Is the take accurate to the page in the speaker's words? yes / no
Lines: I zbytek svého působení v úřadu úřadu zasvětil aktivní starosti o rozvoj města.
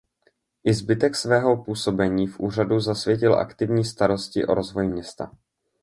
no